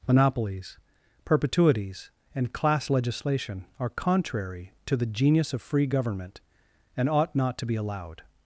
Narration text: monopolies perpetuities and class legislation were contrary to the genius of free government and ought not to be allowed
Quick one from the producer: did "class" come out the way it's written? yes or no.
yes